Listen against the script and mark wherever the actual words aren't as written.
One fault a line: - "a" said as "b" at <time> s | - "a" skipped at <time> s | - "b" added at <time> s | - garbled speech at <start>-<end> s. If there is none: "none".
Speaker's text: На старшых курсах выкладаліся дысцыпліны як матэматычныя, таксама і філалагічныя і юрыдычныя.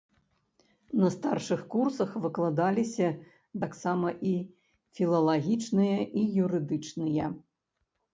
- "дысцыпліны як матэматычныя" skipped at 3.1 s